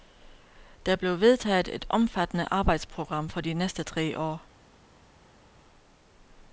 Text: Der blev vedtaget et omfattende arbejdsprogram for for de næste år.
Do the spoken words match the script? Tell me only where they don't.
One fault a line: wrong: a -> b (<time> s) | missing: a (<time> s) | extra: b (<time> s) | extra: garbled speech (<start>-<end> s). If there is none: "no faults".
missing: for (3.4 s)
extra: tre (3.8 s)